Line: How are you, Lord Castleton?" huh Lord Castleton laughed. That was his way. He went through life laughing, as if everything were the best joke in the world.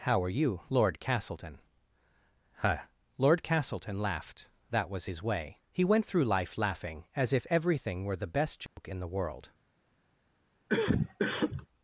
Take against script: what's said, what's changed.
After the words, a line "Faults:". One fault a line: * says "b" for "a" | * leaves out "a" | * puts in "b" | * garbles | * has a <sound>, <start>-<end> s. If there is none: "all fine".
How are you, Lord Castleton?" huh Lord Castleton laughed. That was his way. He went through life laughing, as if everything were the best joke in the world.
Faults:
* has a dropout, 8.7-8.8 s
* has a cough, 10.7-11.7 s